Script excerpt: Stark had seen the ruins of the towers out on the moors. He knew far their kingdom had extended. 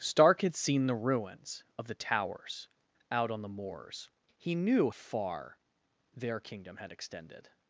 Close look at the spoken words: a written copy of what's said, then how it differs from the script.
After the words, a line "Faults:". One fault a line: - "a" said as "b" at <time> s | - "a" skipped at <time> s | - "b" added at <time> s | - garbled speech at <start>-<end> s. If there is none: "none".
Stark had seen the ruins of the towers out on the moors. He knew far their kingdom had extended.
Faults:
none